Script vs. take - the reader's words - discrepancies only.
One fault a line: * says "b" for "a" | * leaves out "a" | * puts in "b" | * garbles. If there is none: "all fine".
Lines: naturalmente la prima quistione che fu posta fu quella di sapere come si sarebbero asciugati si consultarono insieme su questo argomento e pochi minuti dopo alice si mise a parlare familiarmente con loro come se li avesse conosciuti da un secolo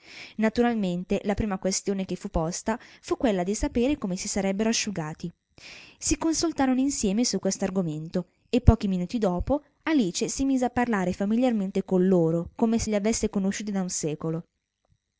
all fine